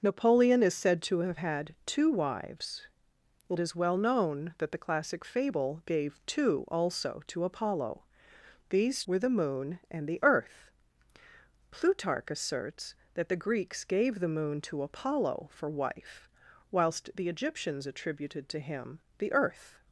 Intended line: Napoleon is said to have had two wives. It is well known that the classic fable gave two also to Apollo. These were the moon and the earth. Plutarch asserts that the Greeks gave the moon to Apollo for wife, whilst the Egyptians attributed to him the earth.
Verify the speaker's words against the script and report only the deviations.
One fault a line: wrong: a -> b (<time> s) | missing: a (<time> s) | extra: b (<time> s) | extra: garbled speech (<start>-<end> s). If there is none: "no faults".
no faults